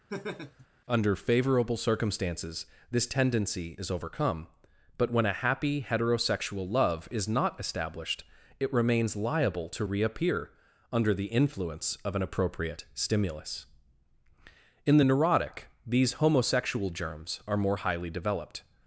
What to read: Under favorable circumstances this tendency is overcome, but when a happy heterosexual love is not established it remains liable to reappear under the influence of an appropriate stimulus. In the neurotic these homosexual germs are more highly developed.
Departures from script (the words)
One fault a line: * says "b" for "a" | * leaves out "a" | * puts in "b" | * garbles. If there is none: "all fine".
all fine